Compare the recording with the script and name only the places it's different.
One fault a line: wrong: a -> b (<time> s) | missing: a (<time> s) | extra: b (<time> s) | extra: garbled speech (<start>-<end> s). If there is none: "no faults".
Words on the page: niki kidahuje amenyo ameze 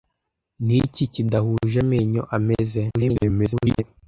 extra: garbled speech (2.9-3.8 s)